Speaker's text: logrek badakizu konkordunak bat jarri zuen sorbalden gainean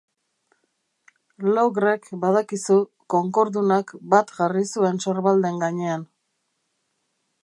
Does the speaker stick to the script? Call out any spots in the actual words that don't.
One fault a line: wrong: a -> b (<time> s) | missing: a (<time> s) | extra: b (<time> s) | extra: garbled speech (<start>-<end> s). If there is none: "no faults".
no faults